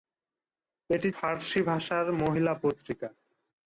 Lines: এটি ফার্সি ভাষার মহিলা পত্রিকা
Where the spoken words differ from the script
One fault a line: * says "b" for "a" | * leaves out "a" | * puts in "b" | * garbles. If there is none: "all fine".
all fine